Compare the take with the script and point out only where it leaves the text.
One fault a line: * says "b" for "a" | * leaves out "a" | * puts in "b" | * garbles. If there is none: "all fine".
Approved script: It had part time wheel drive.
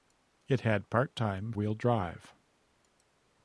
all fine